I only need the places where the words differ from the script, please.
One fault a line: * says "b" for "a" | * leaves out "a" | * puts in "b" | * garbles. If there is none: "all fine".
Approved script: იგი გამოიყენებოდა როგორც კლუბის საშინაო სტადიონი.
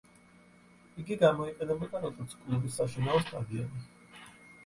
all fine